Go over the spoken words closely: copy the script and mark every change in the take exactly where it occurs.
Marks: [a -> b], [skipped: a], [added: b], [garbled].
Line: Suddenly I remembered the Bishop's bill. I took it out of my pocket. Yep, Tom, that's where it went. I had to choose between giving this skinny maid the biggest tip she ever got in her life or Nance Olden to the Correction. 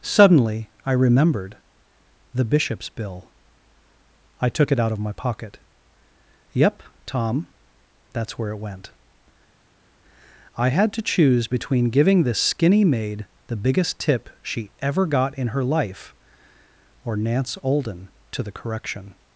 Suddenly I remembered the Bishop's bill. I took it out of my pocket. Yep, Tom, that's where it went. I had to choose between giving this skinny maid the biggest tip she ever got in her life or Nance Olden to the Correction.